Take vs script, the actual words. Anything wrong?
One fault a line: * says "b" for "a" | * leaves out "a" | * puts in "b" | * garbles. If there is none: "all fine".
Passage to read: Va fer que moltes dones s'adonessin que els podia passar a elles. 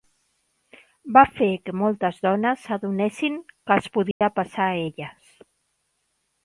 all fine